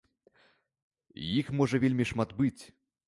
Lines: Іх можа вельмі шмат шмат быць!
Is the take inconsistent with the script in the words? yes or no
yes